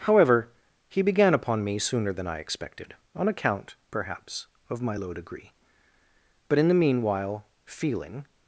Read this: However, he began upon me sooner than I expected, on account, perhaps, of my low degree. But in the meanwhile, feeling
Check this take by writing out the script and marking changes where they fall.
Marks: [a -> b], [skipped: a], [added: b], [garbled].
However, he began upon me sooner than I expected, on account, perhaps, of my low degree. But in the meanwhile, feeling